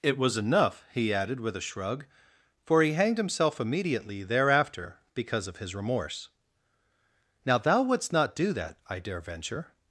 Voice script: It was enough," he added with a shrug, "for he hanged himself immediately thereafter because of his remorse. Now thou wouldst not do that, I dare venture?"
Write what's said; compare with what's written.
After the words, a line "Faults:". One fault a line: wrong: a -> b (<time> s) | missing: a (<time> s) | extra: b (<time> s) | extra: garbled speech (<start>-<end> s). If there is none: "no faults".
It was enough," he added with a shrug, "for he hanged himself immediately thereafter because of his remorse. Now thou wouldst not do that, I dare venture?"
Faults:
no faults